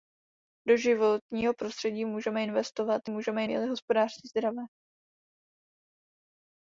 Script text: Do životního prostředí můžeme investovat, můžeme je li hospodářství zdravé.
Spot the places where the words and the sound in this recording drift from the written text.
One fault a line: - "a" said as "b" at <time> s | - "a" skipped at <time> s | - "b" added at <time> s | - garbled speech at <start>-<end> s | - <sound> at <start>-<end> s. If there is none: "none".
none